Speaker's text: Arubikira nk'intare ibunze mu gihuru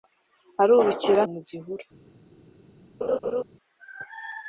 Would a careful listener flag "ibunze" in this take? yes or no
yes